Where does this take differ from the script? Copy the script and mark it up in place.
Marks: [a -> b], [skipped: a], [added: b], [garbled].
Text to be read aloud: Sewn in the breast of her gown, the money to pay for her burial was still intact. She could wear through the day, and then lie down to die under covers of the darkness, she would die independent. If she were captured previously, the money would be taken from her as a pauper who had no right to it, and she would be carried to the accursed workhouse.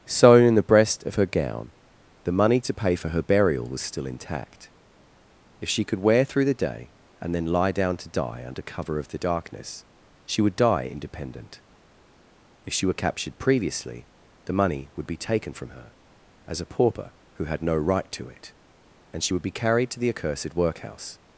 Sewn in the breast of her gown, the money to pay for her burial was still intact. [added: If] She could wear through the day, and then lie down to die under [covers -> cover] of the darkness, she would die independent. If she were captured previously, the money would be taken from her as a pauper who had no right to it, and she would be carried to the accursed workhouse.